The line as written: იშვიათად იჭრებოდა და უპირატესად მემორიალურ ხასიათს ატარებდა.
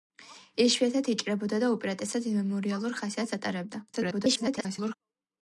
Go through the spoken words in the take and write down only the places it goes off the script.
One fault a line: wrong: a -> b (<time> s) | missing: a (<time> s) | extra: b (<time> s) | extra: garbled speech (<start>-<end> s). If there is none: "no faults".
extra: garbled speech (3.9-4.9 s)